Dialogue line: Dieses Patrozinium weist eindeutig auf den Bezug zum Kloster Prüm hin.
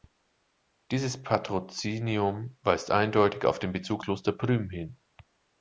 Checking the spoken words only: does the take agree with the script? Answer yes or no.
no